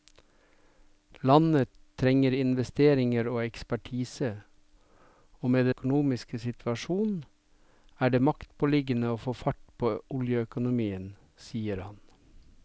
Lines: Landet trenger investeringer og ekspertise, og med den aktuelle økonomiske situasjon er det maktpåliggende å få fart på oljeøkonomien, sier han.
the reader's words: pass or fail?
fail